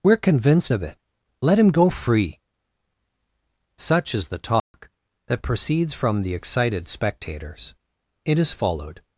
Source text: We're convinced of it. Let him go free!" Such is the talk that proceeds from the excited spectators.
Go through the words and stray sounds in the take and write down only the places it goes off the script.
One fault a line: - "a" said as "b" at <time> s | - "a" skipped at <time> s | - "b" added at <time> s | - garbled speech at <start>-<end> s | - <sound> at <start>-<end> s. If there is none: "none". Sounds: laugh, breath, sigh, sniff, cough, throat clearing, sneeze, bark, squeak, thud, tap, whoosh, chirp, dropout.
- dropout at 4.6-4.7 s
- "It is followed" added at 8.2 s